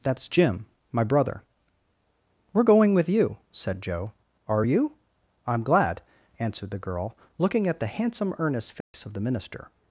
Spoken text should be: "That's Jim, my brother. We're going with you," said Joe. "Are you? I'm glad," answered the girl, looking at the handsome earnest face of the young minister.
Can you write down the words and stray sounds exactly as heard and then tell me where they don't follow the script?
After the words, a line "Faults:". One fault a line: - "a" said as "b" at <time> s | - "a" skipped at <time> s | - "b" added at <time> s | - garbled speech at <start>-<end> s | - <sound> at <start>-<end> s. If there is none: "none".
"That's Jim, my brother. We're going with you," said Joe. "Are you? I'm glad," answered the girl, looking at the handsome earnest face of the minister.
Faults:
- dropout at 8.8-8.9 s
- "young" skipped at 9.2 s